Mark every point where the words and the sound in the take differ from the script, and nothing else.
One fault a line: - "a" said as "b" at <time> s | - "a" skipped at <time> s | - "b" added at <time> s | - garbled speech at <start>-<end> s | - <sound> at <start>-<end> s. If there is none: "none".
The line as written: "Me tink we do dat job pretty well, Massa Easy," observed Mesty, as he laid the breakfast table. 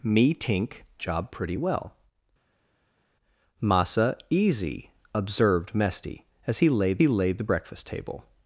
- "we do dat" skipped at 0.8 s
- "he laid" added at 7.0 s